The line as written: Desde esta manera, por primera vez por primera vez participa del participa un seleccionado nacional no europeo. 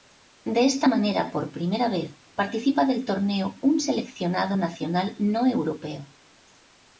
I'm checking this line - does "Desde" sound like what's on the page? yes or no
no